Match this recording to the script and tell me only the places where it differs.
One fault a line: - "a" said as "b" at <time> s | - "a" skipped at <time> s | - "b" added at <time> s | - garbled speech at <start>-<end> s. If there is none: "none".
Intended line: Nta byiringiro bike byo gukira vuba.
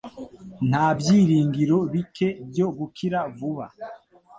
none